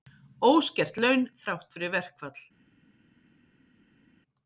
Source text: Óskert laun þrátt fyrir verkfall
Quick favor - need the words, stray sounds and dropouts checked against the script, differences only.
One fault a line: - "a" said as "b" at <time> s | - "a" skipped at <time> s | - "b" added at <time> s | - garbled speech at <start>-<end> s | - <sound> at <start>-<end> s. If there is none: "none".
none